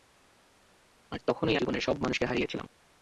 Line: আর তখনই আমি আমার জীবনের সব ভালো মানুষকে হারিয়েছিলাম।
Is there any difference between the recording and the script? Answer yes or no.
yes